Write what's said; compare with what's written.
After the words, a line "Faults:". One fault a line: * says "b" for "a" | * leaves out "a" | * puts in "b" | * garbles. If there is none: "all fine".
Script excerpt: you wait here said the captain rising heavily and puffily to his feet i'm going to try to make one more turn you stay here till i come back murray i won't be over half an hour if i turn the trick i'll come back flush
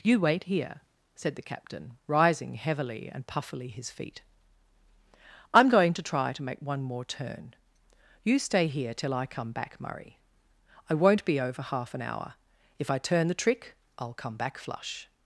you wait here said the captain rising heavily and puffily his feet i'm going to try to make one more turn you stay here till i come back murray i won't be over half an hour if i turn the trick i'll come back flush
Faults:
* leaves out "to"